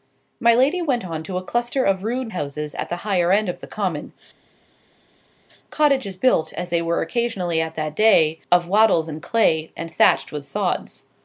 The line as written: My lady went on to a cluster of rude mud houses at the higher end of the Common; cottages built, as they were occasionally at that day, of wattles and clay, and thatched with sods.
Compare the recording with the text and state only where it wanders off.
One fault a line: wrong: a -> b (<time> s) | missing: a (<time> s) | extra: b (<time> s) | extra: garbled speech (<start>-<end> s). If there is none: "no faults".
missing: mud (2.3 s)